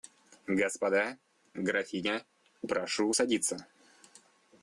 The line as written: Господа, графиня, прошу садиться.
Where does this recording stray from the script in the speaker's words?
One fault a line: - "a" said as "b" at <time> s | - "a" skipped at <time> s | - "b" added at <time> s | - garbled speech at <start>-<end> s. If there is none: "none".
none